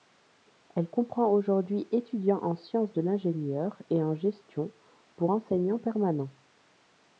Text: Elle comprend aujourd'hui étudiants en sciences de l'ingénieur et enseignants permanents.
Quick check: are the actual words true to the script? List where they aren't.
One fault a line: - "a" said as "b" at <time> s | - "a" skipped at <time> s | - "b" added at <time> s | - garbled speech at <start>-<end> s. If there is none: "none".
- "en gestion pour" added at 4.0 s